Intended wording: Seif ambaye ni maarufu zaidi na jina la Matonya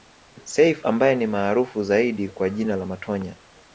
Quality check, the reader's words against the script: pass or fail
fail